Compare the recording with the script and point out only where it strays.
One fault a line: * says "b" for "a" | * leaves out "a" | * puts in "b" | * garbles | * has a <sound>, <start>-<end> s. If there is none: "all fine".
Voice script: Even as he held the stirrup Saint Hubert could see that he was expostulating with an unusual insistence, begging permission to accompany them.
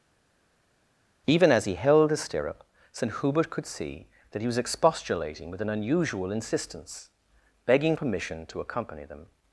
all fine